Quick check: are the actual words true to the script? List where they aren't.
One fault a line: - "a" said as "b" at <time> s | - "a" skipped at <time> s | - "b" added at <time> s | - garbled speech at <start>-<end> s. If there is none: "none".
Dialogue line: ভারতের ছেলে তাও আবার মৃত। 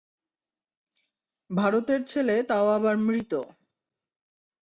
none